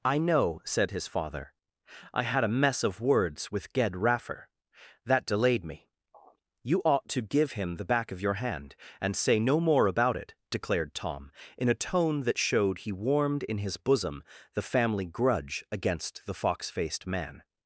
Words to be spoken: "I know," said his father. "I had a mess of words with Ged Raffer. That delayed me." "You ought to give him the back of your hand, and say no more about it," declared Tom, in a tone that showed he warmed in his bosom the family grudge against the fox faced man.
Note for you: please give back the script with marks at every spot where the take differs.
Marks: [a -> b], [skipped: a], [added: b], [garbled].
"I know," said his father. "I had a mess of words with Ged Raffer. That delayed me." "You ought to give him the back of your hand, and say no more about it," declared Tom, in a tone that showed he warmed in his bosom the family grudge against the fox faced man.